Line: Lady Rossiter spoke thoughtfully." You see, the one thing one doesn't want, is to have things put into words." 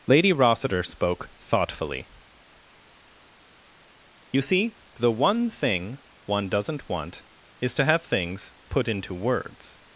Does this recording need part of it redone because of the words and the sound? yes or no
no